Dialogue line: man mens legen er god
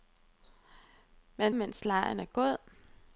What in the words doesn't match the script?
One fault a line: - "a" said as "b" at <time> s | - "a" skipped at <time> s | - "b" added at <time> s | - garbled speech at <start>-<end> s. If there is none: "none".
none